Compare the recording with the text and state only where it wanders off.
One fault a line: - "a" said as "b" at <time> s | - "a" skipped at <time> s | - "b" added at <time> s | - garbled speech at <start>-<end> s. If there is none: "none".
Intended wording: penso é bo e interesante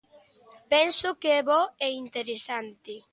- "que" added at 1.2 s